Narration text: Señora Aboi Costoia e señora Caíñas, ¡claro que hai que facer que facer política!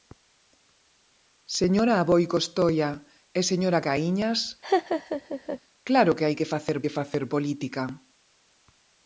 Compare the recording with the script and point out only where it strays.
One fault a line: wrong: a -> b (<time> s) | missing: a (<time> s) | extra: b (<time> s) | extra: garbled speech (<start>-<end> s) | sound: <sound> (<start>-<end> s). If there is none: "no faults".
sound: laugh (4.6-5.6 s)